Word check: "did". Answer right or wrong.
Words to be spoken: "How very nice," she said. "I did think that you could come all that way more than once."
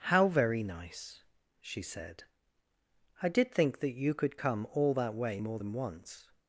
right